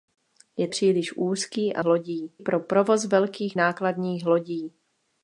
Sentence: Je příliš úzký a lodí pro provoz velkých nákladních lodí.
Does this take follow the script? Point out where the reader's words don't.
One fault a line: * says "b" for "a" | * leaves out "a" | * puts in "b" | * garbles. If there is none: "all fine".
all fine